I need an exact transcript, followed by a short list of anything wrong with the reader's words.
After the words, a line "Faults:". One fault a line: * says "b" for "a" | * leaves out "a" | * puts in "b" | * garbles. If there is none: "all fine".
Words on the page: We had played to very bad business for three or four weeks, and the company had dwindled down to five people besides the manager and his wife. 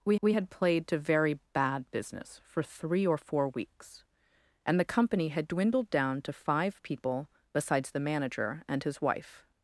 We we had played to very bad business for three or four weeks, and the company had dwindled down to five people besides the manager and his wife.
Faults:
* puts in "we"